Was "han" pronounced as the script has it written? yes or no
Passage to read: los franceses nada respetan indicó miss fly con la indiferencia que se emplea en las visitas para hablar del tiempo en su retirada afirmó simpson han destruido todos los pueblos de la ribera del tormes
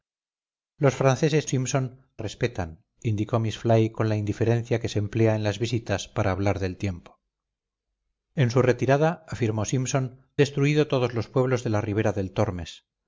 no